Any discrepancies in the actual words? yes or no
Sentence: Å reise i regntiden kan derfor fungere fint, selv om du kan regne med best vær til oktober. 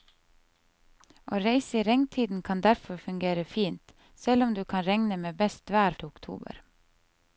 no